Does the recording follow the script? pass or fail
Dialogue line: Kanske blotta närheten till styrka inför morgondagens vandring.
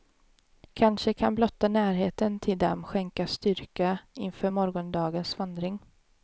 fail